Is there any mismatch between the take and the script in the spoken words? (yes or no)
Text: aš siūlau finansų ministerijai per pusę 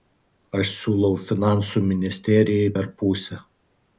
no